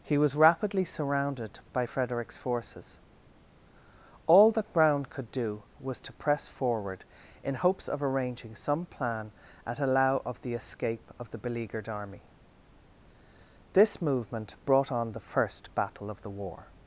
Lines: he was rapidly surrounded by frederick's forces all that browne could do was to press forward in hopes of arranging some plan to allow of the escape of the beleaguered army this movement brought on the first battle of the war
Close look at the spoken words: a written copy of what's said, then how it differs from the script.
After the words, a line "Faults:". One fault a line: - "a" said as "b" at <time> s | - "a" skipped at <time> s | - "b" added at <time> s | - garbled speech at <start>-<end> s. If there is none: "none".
he was rapidly surrounded by frederick's forces all that browne could do was to press forward in hopes of arranging some plan at allow of the escape of the beleaguered army this movement brought on the first battle of the war
Faults:
- "to" said as "at" at 9.7 s